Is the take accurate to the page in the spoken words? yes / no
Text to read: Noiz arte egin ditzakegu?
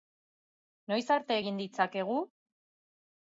yes